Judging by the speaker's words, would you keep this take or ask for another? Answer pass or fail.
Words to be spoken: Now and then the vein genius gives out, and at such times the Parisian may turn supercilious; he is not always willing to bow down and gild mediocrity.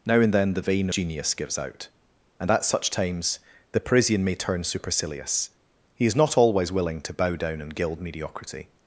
pass